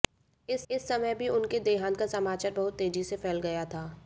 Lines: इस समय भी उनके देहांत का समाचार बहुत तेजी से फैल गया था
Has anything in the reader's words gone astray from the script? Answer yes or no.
yes